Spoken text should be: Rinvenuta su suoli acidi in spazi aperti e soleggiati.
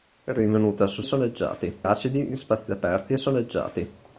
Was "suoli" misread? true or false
true